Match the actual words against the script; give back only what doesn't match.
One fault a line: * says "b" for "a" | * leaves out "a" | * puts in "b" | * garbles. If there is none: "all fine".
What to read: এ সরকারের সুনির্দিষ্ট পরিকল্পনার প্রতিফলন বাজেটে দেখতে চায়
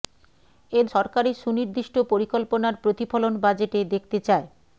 all fine